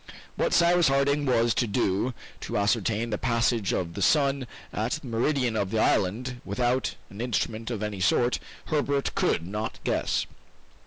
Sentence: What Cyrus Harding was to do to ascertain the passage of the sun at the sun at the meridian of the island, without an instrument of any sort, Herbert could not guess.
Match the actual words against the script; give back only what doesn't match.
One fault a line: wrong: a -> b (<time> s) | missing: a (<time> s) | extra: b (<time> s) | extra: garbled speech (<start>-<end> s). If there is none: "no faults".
missing: sun at the (5.1 s)